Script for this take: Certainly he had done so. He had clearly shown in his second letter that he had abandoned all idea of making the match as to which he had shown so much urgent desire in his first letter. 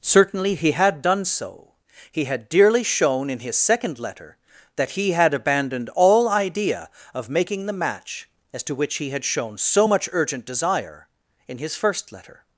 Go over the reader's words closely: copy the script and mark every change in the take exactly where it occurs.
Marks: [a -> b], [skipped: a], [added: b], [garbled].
Certainly he had done so. He had [clearly -> dearly] shown in his second letter that he had abandoned all idea of making the match as to which he had shown so much urgent desire in his first letter.